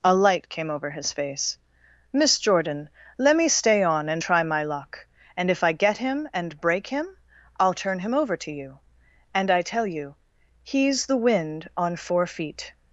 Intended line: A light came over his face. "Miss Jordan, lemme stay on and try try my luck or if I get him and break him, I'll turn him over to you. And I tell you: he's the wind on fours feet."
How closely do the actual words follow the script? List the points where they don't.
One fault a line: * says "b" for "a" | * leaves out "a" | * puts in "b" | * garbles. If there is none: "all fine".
* leaves out "try"
* says "and" for "or"
* says "four" for "fours"